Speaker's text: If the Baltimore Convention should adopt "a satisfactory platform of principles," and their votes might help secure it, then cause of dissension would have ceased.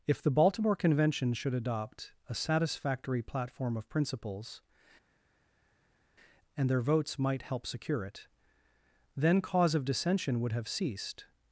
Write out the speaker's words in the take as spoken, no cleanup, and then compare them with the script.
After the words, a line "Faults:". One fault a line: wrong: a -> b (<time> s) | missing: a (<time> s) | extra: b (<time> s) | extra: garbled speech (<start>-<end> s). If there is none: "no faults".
If the Baltimore Convention should adopt "a satisfactory platform of principles," and their votes might help secure it, then cause of dissension would have ceased.
Faults:
no faults